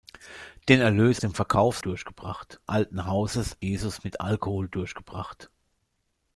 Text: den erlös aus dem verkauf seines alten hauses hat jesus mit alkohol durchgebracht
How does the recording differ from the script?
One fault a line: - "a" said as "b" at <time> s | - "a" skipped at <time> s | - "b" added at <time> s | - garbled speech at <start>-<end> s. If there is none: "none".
- "aus" skipped at 1.2 s
- "seines" said as "durchgebracht" at 1.8 s
- "hat" skipped at 3.5 s